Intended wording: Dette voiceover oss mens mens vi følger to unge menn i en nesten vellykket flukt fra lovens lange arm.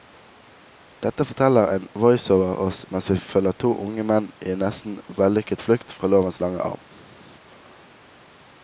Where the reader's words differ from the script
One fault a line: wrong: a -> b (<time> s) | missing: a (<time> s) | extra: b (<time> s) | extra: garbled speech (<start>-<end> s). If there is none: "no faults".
extra: forteller en (1.3 s)
missing: mens (3.1 s)